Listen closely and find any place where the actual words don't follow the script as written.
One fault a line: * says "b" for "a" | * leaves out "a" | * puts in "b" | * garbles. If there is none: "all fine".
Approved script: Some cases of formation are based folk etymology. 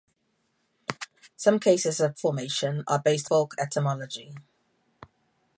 all fine